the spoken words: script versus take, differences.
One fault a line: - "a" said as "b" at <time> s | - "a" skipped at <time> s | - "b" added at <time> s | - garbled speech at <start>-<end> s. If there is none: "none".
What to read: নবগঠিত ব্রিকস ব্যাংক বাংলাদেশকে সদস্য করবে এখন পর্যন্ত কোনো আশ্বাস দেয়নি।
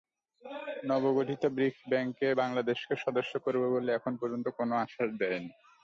- "বলে" added at 3.7 s